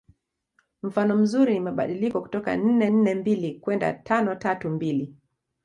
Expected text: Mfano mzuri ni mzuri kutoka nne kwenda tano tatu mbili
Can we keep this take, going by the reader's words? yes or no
no